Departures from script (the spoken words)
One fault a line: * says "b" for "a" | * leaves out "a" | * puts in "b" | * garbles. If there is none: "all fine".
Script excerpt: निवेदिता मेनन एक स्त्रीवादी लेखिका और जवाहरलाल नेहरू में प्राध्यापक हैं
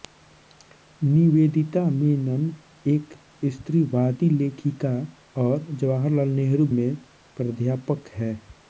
all fine